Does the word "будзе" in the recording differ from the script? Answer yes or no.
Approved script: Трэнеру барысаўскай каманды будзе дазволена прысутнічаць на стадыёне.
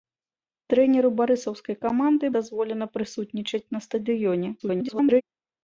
yes